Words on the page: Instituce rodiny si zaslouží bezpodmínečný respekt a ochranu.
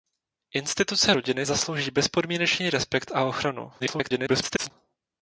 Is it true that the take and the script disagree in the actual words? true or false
true